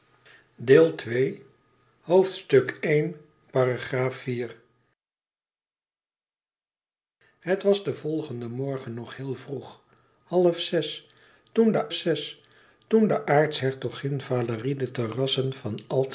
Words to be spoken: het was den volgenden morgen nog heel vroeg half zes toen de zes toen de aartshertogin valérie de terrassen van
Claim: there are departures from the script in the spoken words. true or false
false